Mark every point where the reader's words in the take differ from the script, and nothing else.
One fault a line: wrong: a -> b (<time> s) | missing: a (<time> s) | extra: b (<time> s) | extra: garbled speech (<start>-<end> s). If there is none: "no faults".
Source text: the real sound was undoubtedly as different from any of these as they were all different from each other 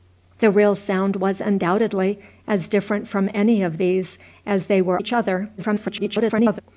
missing: all different from (5.0 s)
extra: garbled speech (5.6-6.6 s)